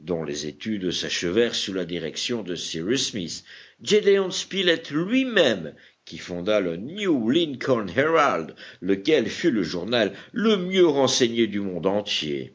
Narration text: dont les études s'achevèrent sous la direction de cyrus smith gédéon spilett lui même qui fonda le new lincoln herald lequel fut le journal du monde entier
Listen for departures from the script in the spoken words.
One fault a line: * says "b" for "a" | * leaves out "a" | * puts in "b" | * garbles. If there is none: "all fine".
* puts in "le mieux renseigné"